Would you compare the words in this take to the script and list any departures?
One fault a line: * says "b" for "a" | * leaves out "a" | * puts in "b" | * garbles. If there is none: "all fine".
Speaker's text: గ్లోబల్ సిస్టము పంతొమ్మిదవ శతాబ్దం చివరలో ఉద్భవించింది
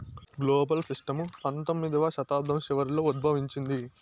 all fine